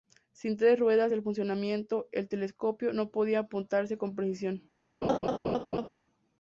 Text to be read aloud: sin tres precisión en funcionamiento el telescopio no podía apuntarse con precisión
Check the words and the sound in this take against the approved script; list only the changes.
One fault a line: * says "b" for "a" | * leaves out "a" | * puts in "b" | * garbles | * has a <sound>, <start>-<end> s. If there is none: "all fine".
* says "ruedas" for "precisión"
* has a laugh, 5.0-5.9 s